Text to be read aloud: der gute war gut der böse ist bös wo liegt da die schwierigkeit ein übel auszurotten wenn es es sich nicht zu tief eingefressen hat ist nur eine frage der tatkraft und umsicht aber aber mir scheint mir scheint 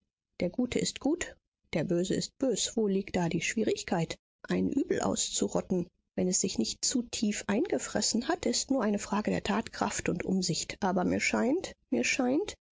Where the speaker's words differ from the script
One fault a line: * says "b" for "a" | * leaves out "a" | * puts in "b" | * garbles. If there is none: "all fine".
* says "ist" for "war"
* leaves out "es"
* leaves out "aber"